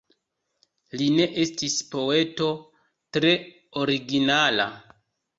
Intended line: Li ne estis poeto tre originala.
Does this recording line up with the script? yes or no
yes